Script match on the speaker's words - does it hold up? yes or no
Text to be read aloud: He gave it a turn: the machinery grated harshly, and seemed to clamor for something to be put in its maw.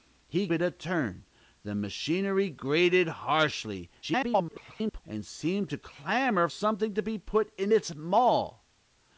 no